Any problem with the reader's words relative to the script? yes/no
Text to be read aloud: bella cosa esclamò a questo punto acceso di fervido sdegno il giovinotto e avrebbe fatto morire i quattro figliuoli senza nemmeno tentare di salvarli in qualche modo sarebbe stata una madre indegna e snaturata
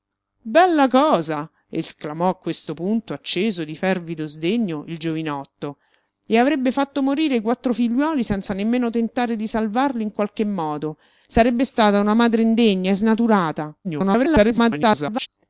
yes